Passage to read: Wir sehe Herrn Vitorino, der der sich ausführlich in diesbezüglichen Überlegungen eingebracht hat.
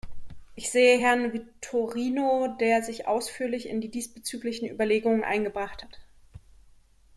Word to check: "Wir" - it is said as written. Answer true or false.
false